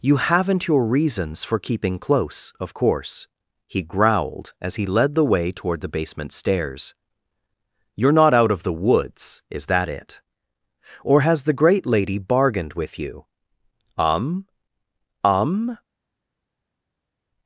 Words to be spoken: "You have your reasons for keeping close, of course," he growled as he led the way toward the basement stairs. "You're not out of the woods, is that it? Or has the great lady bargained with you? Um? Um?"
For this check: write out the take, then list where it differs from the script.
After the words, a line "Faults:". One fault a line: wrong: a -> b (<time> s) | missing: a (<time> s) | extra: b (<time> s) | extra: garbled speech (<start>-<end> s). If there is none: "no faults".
"You haven't your reasons for keeping close, of course," he growled as he led the way toward the basement stairs. "You're not out of the woods, is that it? Or has the great lady bargained with you? Um? Um?"
Faults:
wrong: have -> haven't (0.2 s)